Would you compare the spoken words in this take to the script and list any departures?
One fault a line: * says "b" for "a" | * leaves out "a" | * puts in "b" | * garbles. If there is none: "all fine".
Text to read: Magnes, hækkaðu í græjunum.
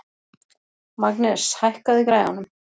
all fine